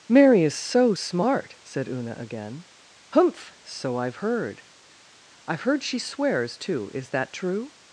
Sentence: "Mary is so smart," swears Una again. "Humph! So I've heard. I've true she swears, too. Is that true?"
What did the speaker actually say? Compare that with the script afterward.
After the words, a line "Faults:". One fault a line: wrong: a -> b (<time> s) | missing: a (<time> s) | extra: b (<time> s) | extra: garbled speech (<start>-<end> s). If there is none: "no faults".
"Mary is so smart," said Una again. "Humph! So I've heard. I've heard she swears, too. Is that true?"
Faults:
wrong: swears -> said (1.6 s)
wrong: true -> heard (5.6 s)